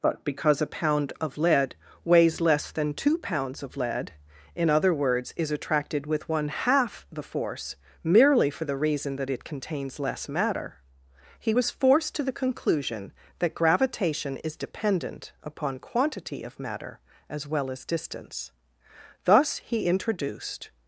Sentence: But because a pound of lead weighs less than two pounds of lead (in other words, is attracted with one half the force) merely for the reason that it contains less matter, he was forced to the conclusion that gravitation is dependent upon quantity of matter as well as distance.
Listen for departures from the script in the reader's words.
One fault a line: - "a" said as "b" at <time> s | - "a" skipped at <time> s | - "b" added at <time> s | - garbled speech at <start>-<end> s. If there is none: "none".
- "Thus he introduced" added at 19.2 s